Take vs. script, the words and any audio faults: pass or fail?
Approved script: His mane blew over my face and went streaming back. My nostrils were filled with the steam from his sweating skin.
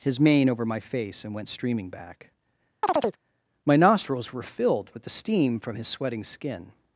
fail